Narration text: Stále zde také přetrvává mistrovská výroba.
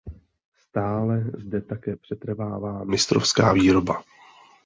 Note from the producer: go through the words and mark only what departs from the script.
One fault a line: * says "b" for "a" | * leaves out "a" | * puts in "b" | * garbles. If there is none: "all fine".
all fine